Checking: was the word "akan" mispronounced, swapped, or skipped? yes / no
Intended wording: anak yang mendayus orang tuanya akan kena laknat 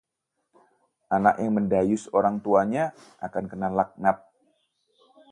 no